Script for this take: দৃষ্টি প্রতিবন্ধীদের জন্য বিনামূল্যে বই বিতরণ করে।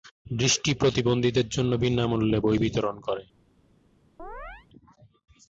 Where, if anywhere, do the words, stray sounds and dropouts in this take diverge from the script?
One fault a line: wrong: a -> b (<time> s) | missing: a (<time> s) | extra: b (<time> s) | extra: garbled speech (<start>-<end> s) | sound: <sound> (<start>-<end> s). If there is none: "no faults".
sound: chirp (4.2-4.7 s)